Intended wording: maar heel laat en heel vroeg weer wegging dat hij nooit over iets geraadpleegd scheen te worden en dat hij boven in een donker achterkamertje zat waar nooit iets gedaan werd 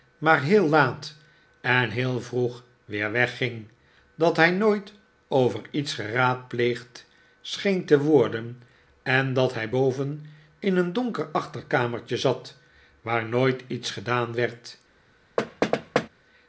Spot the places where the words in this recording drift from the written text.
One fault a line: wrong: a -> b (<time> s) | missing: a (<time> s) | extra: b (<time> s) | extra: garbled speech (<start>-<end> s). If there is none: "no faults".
no faults